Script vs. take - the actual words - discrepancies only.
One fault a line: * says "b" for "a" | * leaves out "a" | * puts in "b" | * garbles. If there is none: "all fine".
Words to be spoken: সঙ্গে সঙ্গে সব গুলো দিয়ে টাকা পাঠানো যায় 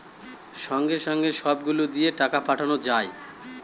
all fine